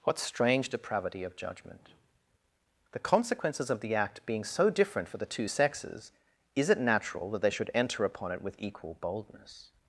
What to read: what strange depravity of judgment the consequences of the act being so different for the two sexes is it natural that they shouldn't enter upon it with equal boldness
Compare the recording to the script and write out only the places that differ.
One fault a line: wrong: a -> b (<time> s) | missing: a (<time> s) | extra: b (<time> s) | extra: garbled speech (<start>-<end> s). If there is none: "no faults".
wrong: shouldn't -> should (7.5 s)